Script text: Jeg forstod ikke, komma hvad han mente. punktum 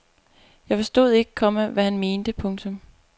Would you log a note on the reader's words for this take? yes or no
no